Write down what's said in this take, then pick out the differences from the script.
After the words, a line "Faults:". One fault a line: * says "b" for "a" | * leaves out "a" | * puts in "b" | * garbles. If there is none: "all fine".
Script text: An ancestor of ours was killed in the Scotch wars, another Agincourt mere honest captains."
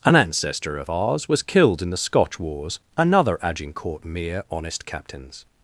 An ancestor of ours was killed in the Scotch wars, another Agincourt mere honest captains."
Faults:
all fine